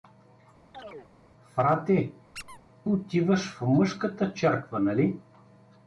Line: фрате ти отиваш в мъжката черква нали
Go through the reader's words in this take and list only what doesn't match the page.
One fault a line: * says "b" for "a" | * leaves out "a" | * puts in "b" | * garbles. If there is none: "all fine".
* leaves out "ти"